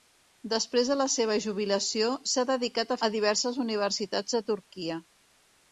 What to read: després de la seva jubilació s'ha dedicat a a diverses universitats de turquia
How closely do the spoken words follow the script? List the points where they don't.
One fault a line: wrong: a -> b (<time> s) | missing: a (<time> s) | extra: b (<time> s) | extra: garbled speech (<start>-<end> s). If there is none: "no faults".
no faults